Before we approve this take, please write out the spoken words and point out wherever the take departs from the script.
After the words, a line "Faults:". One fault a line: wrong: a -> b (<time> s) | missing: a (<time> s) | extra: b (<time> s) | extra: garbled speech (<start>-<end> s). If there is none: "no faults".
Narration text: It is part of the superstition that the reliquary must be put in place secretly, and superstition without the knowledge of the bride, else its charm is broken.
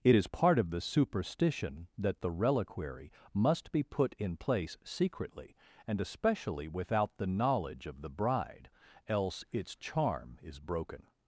It is part of the superstition that the reliquary must be put in place secretly, and especially without the knowledge of the bride, else its charm is broken.
Faults:
wrong: superstition -> especially (6.0 s)